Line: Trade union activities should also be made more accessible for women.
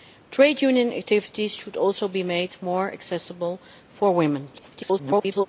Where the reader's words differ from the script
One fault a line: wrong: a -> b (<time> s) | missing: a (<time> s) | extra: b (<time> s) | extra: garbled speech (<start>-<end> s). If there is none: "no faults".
extra: garbled speech (4.5-5.5 s)